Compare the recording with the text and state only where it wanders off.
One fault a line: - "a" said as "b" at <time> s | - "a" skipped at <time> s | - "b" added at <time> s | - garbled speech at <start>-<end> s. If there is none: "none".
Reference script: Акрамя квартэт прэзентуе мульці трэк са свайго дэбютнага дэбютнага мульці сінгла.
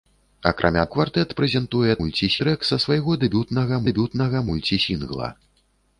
none